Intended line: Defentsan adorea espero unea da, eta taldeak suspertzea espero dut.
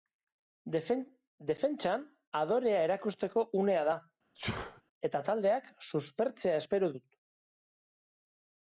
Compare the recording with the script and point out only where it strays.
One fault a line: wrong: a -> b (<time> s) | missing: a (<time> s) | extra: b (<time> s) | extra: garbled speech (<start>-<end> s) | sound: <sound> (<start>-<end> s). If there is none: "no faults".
wrong: espero -> erakusteko (2.9 s)
sound: sneeze (4.3-4.8 s)